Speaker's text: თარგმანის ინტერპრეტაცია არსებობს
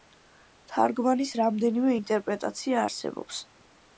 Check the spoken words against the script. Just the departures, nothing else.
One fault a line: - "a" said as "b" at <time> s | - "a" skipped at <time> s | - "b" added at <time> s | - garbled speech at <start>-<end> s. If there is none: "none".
- "რამდენიმე" added at 1.4 s